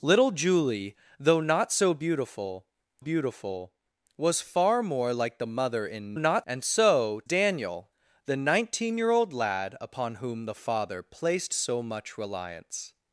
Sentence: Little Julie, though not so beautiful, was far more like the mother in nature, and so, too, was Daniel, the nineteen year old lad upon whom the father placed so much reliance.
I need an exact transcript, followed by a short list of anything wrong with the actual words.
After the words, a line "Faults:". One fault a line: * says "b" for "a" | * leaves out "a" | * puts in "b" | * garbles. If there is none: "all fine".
Little Julie, though not so beautiful beautiful, was far more like the mother in not, and so, Daniel, the nineteen year old lad upon whom the father placed so much reliance.
Faults:
* puts in "beautiful"
* says "not" for "nature"
* leaves out "too was"